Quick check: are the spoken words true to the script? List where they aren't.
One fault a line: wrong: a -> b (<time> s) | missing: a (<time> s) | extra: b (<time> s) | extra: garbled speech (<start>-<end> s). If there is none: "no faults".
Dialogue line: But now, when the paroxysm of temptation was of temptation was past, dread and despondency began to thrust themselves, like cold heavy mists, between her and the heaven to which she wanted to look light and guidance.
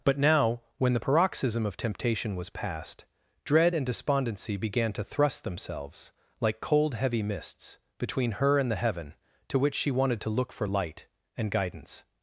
missing: of temptation was (2.5 s)
extra: for (10.5 s)